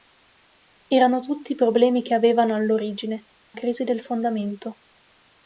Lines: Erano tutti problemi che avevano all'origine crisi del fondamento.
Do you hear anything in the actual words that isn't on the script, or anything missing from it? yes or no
no